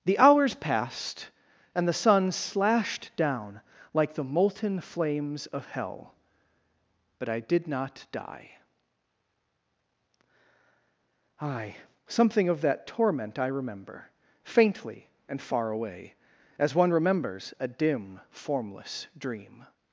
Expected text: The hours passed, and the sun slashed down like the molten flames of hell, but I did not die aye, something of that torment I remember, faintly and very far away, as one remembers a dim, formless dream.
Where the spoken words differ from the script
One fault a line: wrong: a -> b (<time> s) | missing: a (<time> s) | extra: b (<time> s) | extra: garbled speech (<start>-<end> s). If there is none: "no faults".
missing: very (15.4 s)